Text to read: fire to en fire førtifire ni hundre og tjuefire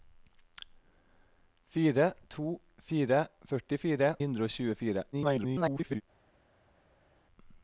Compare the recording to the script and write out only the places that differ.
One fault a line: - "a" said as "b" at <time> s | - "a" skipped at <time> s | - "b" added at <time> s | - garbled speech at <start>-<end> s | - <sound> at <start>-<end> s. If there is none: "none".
- "en" skipped at 2.6 s
- "ni" skipped at 4.1 s
- garbled speech at 5.1-6.0 s